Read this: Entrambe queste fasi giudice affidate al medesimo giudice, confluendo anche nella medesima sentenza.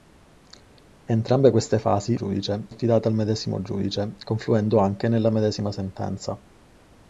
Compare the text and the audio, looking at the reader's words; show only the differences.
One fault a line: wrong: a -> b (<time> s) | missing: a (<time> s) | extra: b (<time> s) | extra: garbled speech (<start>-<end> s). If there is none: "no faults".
no faults